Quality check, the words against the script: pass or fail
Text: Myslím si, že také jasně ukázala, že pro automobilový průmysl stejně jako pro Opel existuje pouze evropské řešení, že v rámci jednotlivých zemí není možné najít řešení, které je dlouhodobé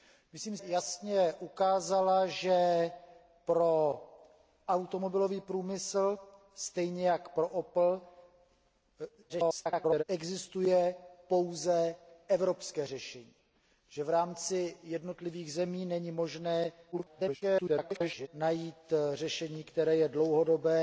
fail